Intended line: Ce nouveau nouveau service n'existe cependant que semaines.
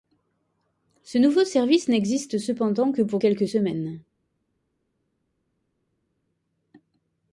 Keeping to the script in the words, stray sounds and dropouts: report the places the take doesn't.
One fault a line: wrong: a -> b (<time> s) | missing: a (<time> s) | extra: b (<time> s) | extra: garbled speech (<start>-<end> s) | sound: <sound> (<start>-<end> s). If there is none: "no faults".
missing: nouveau (1.4 s)
extra: pour quelques (3.0 s)